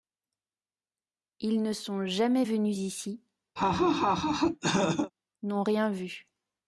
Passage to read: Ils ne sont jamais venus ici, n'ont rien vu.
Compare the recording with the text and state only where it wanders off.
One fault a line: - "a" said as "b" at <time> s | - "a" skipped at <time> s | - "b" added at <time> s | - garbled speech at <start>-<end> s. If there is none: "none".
none